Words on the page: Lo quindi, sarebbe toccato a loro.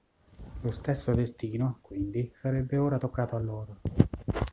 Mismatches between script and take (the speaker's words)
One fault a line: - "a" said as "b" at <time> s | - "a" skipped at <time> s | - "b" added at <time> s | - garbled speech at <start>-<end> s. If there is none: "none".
- "stesso destino" added at 0.7 s
- "ora" added at 2.8 s